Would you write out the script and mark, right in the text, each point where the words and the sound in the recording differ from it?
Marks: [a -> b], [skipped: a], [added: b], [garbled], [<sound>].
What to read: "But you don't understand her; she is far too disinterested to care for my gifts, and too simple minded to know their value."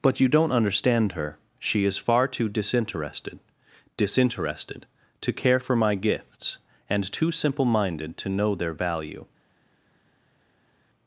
"But you don't understand her; she is far too disinterested [added: disinterested] to care for my gifts, and too simple minded to know their value."